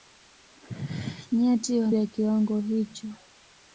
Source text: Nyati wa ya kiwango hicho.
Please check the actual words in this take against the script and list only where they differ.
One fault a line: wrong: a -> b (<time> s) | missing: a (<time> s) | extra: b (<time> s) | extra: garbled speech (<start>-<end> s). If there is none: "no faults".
no faults